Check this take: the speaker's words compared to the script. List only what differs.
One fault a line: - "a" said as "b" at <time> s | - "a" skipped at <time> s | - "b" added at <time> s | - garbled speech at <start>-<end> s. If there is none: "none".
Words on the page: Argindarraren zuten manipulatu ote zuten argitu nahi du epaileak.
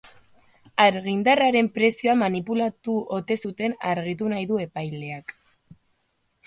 - "zuten" said as "prezioa" at 1.8 s